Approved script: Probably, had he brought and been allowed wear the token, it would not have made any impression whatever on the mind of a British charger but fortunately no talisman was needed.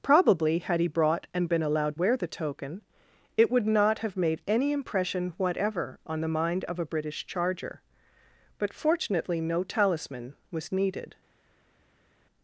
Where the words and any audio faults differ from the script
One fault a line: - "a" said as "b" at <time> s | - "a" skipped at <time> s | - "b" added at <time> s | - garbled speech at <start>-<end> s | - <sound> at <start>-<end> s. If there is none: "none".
none